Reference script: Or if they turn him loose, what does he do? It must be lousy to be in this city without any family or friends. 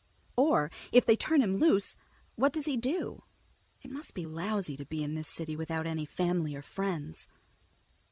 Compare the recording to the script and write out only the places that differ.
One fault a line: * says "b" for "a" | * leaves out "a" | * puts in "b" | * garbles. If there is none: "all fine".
all fine